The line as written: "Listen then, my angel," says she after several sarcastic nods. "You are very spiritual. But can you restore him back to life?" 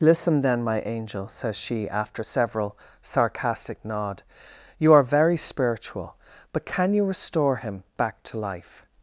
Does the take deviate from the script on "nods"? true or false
true